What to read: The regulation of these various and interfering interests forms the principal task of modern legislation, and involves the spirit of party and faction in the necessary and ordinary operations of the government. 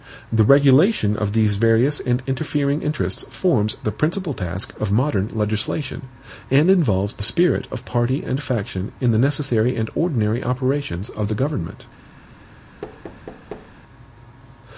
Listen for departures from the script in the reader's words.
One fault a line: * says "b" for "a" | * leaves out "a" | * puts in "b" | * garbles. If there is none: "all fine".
all fine